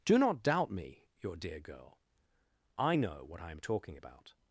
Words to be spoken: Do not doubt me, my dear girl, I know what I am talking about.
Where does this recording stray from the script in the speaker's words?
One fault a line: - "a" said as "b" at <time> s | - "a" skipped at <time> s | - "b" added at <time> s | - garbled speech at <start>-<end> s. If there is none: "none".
- "my" said as "your" at 1.2 s